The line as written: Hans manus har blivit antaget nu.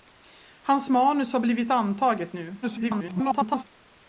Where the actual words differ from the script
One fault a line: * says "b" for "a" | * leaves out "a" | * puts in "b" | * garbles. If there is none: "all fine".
* garbles